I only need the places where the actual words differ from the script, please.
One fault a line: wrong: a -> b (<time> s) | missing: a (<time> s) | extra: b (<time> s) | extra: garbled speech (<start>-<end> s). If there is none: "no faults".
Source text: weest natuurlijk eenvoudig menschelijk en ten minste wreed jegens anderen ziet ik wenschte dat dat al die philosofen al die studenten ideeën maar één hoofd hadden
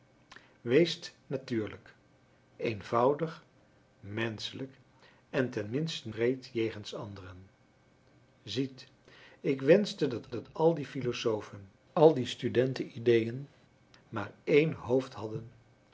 no faults